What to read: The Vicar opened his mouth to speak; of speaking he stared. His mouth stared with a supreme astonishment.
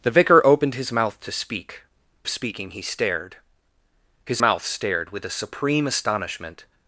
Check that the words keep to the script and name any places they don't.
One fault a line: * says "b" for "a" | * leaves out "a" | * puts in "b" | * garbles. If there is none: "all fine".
all fine